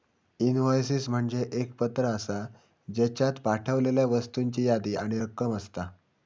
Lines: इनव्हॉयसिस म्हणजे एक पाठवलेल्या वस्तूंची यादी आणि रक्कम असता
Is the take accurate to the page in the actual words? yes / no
no